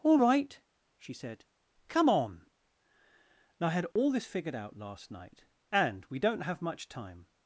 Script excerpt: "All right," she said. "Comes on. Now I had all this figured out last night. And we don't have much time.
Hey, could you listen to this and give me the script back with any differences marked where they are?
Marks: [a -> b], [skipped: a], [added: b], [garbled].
"All right," she said. ["Comes -> Come] on. Now I had all this figured out last night. And we don't have much time.